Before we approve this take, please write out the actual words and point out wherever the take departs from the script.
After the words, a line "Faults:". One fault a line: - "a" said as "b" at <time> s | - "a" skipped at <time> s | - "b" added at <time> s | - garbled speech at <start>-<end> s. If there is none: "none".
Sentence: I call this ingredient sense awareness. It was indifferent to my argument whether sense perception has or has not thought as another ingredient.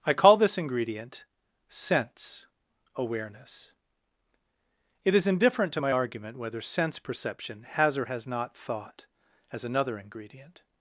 I call this ingredient sense awareness. It is indifferent to my argument whether sense perception has or has not thought as another ingredient.
Faults:
- "was" said as "is" at 5.1 s